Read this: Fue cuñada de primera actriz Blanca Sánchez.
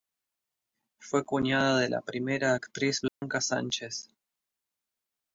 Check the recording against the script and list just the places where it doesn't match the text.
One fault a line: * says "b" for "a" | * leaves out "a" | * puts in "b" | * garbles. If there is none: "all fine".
* puts in "la"